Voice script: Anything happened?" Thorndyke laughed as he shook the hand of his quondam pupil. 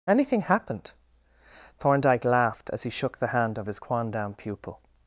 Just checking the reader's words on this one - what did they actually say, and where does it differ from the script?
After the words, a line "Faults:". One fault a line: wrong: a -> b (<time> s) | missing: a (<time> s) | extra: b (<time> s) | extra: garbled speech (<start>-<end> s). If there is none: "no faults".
Anything happened?" Thorndyke laughed as he shook the hand of his quondam pupil.
Faults:
no faults